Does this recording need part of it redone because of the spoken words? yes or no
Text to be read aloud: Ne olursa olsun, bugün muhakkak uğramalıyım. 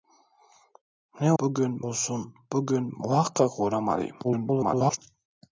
yes